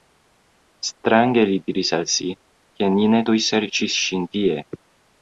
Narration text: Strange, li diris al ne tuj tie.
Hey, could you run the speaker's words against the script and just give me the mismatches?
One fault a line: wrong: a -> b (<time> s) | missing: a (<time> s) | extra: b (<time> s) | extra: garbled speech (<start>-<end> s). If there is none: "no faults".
extra: si ke ni (2.1 s)
extra: serĉis ŝin (3.5 s)